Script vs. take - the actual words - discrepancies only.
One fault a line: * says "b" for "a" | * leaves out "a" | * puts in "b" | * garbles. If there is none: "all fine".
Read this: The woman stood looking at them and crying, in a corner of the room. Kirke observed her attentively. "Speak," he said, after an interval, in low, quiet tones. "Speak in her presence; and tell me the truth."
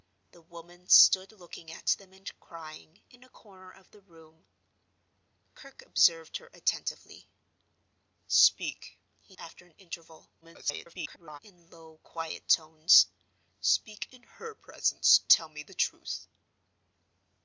* leaves out "said"
* garbles
* leaves out "and"